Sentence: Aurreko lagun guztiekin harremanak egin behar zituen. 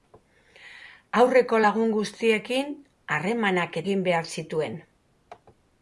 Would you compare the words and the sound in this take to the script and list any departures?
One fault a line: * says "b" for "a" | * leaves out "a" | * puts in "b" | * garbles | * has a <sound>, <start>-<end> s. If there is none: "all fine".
all fine